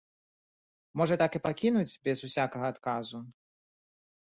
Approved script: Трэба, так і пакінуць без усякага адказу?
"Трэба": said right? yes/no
no